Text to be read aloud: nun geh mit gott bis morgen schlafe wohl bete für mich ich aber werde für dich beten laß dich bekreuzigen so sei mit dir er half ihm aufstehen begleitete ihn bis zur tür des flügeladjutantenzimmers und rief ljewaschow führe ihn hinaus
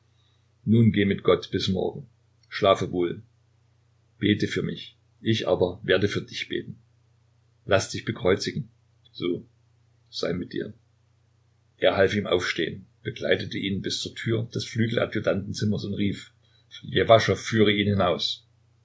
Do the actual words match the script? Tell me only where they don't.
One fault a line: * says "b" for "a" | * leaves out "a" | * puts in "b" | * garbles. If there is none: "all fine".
all fine